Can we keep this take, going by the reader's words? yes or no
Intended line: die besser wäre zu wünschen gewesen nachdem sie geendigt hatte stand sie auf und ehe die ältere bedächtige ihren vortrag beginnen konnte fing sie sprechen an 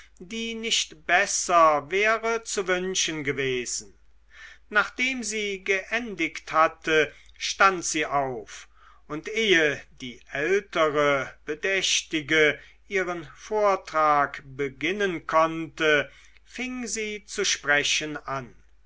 no